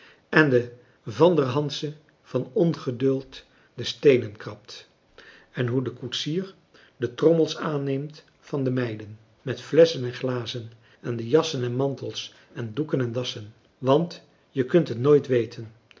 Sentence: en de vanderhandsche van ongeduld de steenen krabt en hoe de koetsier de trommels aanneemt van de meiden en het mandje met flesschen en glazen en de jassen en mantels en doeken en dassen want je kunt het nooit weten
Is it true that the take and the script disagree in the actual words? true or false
true